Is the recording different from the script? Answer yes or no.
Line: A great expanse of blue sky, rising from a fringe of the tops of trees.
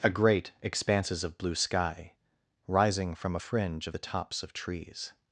yes